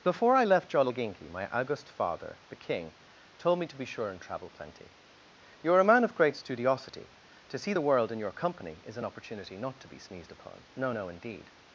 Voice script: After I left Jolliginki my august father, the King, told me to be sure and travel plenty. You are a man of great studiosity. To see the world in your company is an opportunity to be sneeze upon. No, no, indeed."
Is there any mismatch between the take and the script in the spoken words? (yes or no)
yes